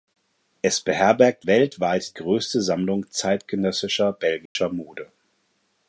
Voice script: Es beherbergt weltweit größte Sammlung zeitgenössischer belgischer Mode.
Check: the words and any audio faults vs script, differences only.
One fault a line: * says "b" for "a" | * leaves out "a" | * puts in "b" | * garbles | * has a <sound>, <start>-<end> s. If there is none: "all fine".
* has a dropout, 4.5-4.6 s